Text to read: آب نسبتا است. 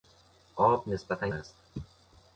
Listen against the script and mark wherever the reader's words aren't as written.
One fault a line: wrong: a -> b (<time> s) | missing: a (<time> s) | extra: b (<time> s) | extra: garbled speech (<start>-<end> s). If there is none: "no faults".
no faults